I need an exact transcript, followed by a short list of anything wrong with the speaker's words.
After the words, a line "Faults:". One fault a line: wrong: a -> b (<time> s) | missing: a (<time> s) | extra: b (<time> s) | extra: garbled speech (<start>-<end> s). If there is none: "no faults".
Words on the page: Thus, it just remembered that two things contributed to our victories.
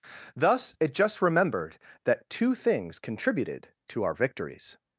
Thus, it just remembered that two things contributed to our victories.
Faults:
no faults